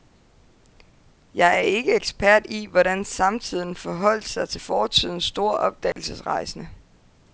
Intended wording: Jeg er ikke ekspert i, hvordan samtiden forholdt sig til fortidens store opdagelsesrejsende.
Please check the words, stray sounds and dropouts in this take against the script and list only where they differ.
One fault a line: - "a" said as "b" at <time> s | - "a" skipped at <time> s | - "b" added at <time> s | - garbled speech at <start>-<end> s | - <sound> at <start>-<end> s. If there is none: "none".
- dropout at 5.9-6.0 s